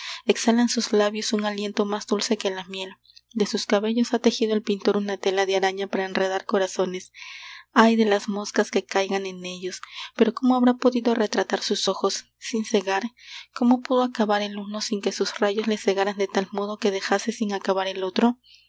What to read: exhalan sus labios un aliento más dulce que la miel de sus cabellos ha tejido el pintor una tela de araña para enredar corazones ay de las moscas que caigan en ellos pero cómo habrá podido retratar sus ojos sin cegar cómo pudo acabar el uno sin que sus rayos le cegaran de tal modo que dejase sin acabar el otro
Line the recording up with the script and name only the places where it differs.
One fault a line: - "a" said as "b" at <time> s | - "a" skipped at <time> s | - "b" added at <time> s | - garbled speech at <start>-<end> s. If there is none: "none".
none